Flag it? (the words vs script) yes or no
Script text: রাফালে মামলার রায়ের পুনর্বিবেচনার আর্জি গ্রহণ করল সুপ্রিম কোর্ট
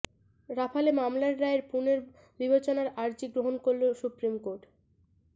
no